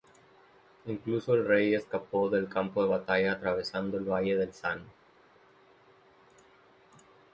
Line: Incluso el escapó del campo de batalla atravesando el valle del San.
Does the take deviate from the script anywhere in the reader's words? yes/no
yes